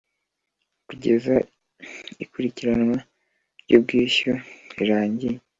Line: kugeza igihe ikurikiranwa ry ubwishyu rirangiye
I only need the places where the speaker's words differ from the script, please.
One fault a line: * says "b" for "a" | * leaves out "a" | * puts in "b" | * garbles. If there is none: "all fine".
* leaves out "igihe"